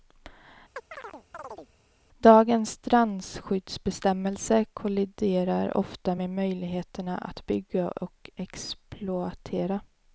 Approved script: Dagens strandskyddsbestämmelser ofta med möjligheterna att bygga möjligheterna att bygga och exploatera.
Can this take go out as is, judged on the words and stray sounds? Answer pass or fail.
fail